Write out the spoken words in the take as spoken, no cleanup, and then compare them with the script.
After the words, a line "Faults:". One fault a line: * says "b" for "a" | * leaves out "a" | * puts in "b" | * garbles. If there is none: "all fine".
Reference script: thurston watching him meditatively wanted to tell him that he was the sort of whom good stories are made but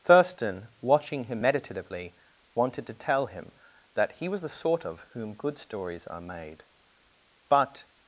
thurston watching him meditatively wanted to tell him that he was the sort of whom good stories are made but
Faults:
all fine